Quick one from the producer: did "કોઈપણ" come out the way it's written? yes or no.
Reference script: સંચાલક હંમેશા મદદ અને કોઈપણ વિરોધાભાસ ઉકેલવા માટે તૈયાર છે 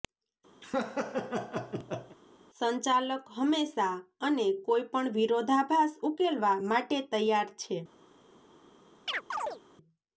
yes